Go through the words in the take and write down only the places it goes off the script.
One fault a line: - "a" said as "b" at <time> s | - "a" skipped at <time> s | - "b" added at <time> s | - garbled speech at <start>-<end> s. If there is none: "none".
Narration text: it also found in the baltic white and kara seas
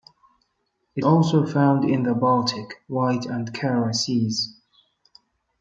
none